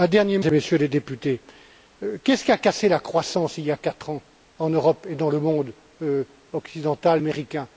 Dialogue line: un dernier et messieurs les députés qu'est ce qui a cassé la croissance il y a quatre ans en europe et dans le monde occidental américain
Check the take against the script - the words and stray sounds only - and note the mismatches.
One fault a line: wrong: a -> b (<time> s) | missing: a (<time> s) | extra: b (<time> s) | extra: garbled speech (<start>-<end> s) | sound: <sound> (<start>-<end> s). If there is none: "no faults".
no faults